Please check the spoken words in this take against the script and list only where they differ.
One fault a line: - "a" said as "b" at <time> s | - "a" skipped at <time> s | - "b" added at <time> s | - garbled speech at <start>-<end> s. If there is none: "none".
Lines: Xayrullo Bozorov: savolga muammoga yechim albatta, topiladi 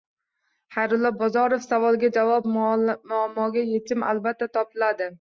- "javob" added at 2.2 s